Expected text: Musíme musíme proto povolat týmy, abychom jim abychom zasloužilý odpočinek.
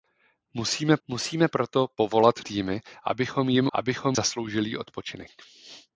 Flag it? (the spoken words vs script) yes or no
no